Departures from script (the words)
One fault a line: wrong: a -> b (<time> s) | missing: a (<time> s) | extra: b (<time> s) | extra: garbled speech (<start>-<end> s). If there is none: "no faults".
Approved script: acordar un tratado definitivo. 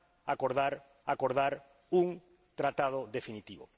extra: acordar (1.0 s)